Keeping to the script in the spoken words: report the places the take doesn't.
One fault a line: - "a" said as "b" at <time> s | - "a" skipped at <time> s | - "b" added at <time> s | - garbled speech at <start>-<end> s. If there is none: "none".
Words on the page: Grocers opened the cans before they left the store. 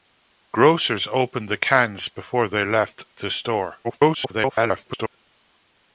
- garbled speech at 3.8-5.2 s